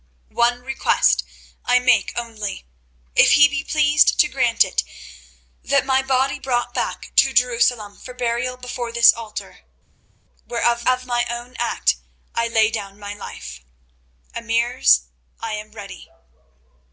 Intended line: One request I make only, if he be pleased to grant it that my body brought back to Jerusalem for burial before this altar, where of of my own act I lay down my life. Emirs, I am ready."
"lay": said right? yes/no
yes